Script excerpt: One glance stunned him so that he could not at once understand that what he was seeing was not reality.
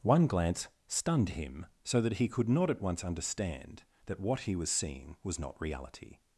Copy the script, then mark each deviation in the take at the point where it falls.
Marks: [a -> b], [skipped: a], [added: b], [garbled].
One glance stunned him so that he could not at once understand that what he was seeing was not reality.